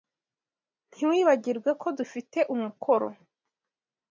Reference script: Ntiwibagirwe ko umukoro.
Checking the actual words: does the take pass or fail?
fail